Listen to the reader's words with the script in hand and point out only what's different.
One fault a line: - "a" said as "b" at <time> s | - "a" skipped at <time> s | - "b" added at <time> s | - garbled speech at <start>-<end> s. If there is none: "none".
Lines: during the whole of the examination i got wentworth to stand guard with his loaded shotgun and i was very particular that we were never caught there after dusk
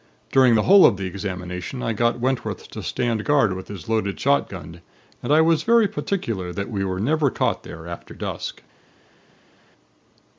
none